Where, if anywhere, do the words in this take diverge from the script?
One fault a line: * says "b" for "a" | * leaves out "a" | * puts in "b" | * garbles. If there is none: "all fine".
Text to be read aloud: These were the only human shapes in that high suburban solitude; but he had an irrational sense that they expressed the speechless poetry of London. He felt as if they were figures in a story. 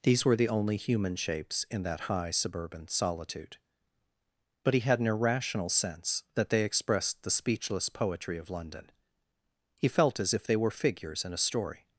all fine